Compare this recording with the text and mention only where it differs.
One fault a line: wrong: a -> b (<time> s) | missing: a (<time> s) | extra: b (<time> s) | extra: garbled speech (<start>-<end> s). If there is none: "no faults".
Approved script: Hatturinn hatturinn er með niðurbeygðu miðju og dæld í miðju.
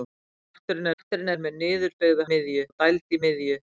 no faults